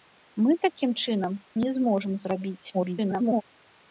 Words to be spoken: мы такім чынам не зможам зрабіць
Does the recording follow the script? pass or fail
fail